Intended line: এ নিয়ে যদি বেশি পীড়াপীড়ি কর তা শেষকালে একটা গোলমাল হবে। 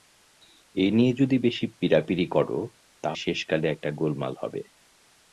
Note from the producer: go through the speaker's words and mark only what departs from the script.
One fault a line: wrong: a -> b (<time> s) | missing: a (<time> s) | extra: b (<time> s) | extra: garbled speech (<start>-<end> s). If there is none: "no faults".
no faults